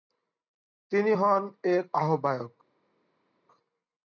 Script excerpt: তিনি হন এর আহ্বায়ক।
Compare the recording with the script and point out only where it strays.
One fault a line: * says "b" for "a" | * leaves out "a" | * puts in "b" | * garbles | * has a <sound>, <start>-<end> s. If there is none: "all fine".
all fine